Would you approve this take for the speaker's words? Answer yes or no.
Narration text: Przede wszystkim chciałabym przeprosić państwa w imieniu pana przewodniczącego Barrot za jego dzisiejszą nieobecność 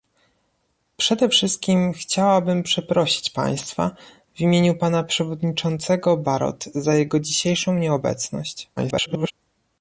no